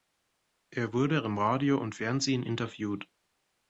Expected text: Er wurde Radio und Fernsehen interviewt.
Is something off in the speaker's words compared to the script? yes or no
yes